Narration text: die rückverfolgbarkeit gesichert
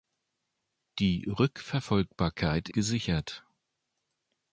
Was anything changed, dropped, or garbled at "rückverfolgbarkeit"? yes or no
no